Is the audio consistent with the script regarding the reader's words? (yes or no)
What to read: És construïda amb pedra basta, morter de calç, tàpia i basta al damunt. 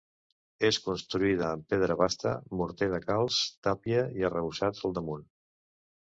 no